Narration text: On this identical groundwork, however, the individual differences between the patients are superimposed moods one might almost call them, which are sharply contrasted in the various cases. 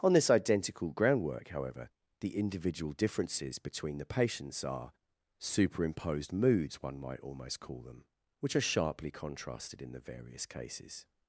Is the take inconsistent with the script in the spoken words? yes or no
no